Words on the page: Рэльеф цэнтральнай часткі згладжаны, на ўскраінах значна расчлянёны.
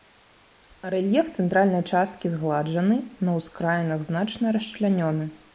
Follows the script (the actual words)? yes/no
yes